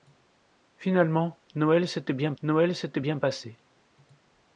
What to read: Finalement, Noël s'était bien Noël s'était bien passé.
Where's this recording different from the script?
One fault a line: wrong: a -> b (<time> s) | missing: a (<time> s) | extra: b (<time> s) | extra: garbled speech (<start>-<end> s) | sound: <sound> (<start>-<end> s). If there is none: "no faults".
no faults